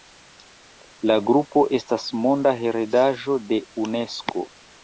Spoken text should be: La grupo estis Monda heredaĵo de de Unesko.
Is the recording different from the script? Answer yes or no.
yes